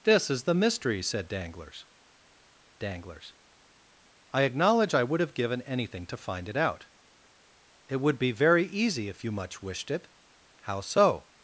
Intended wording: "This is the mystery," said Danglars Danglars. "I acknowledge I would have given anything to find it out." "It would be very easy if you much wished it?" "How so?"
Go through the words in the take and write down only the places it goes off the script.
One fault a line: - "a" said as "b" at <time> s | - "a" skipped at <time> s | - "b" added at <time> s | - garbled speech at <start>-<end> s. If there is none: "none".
none